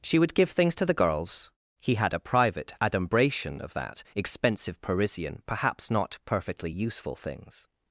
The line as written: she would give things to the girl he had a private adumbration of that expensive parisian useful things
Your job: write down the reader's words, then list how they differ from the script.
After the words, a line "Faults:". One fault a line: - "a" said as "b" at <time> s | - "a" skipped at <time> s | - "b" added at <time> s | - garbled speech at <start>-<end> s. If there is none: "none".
she would give things to the girls he had a private adumbration of that expensive parisian perhaps not perfectly useful things
Faults:
- "girl" said as "girls" at 0.9 s
- "perhaps not perfectly" added at 5.5 s